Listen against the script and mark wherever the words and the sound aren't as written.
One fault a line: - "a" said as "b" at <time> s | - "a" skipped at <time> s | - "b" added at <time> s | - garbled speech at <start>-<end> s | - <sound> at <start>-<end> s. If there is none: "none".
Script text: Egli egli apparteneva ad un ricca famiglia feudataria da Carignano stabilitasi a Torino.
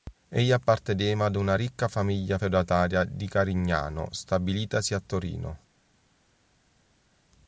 - "egli" skipped at 0.5 s
- "un" said as "una" at 1.4 s
- "da" said as "di" at 3.0 s